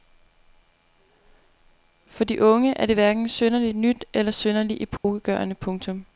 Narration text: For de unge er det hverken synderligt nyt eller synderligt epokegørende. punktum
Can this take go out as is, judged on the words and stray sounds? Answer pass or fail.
fail